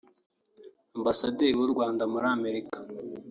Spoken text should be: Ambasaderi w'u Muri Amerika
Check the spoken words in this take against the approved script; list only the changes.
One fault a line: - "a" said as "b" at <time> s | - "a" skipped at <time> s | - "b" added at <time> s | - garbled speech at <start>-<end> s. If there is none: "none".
- "Rwanda" added at 1.7 s